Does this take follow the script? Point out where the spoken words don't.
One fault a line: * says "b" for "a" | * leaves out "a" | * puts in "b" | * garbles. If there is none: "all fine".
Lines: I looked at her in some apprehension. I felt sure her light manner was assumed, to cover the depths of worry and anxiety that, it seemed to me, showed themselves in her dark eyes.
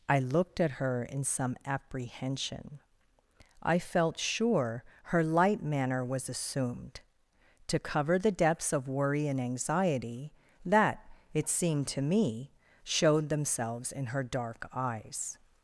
all fine